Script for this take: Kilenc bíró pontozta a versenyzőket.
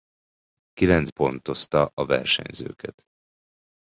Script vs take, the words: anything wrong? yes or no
yes